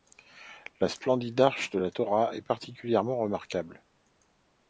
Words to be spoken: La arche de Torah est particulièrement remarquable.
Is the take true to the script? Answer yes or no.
no